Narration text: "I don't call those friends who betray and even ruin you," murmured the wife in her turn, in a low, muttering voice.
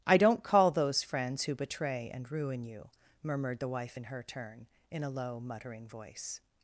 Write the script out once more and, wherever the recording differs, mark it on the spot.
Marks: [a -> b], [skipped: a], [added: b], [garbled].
"I don't call those friends who betray and [skipped: even] ruin you," murmured the wife in her turn, in a low, muttering voice.